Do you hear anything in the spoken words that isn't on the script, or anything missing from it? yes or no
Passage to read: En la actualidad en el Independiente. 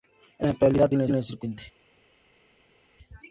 no